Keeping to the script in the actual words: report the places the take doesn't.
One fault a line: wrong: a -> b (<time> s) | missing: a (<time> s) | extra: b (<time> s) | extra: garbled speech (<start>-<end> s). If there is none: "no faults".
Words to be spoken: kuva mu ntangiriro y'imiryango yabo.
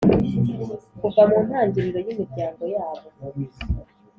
no faults